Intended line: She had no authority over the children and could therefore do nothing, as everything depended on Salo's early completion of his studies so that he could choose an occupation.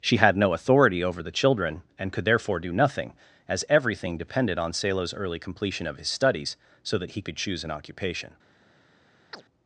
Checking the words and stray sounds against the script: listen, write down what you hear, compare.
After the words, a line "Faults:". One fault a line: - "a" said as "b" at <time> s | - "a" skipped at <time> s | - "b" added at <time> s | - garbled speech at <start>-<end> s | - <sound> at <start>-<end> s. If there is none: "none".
She had no authority over the children and could therefore do nothing, as everything depended on Salo's early completion of his studies so that he could choose an occupation.
Faults:
- chirp at 9.3-9.4 s